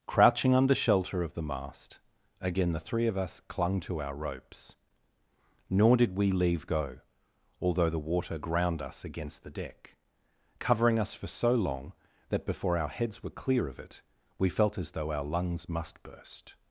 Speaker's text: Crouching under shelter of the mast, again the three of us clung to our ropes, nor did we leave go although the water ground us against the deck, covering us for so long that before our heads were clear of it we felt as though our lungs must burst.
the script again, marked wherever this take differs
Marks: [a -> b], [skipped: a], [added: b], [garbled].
Crouching under shelter of the mast, again the three of us clung to our ropes, nor did we leave go although the water ground us against the deck, covering us for so long that before our heads were clear of it we felt as though our lungs must burst.